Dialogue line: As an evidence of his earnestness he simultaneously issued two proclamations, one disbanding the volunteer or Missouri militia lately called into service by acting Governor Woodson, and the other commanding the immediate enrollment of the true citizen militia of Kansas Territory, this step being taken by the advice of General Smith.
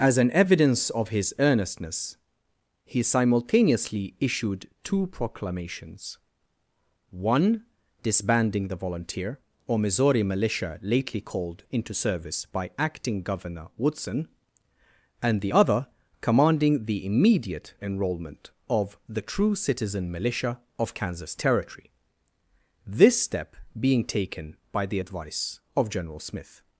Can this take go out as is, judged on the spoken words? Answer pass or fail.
pass